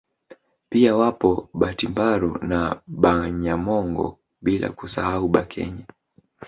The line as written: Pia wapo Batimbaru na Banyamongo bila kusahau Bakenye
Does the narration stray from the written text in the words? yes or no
no